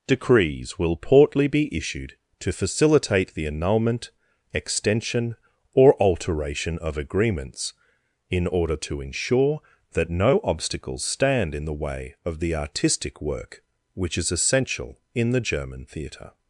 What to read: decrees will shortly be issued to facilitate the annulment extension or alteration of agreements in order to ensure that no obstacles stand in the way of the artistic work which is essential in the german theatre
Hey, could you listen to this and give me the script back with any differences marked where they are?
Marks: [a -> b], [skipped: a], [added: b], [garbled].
decrees will [shortly -> portly] be issued to facilitate the annulment extension or alteration of agreements in order to ensure that no obstacles stand in the way of the artistic work which is essential in the german theatre